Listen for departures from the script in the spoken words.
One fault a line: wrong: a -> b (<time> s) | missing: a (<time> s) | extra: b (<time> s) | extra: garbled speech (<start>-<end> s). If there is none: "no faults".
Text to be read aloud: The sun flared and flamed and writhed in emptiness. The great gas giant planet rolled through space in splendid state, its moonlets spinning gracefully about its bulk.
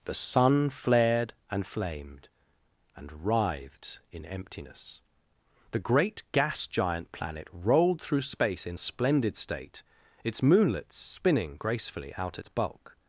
wrong: about -> out (12.2 s)